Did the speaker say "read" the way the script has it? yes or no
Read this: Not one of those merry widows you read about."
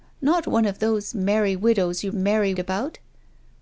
no